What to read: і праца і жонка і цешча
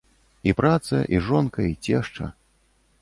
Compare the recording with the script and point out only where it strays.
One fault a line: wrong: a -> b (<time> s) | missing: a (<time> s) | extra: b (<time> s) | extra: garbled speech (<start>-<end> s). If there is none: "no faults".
no faults